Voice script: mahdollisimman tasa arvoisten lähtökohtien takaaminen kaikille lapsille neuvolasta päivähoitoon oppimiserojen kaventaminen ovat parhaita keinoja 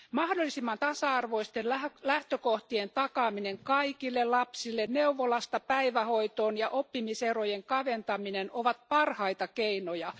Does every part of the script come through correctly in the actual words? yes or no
no